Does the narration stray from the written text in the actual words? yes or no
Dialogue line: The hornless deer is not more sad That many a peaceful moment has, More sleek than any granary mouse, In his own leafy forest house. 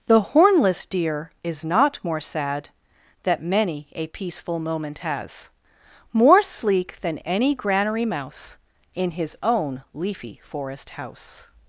no